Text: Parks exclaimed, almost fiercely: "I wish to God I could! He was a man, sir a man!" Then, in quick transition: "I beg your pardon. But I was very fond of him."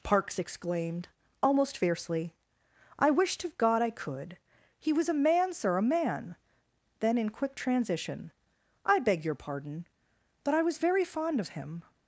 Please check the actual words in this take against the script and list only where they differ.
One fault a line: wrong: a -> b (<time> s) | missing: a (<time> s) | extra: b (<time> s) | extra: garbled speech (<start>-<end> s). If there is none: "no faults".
no faults